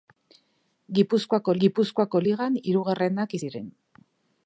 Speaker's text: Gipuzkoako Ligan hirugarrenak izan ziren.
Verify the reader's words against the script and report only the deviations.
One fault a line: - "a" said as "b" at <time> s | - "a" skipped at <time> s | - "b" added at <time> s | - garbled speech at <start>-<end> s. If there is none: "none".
- "gipuzkoako" added at 1.6 s
- "izan" skipped at 3.4 s